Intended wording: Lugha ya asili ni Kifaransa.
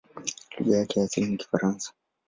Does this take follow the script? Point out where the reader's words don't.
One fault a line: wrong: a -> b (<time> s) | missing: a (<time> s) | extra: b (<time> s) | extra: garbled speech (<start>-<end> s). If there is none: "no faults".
extra: yake (0.8 s)